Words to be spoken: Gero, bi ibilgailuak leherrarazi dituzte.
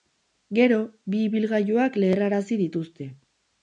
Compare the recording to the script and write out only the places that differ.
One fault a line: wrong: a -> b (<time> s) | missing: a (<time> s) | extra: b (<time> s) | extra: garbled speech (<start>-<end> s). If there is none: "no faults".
no faults